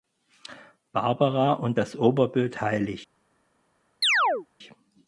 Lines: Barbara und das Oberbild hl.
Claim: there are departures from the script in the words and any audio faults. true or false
true